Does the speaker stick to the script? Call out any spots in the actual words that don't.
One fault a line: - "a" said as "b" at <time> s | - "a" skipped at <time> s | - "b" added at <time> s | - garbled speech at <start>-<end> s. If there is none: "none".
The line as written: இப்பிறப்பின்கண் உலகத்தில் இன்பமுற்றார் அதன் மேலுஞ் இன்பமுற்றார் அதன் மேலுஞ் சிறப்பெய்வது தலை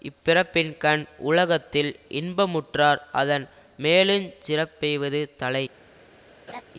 - "இன்பமுற்றார் அதன் மேலுஞ்" skipped at 4.3 s